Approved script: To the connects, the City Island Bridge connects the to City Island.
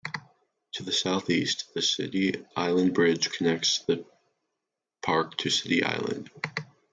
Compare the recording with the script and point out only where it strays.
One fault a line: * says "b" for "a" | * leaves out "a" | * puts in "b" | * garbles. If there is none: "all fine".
* says "southeast" for "connects"
* puts in "park"